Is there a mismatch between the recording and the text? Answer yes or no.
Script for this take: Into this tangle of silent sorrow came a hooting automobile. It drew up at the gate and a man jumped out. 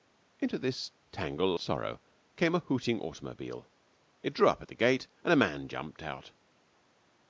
yes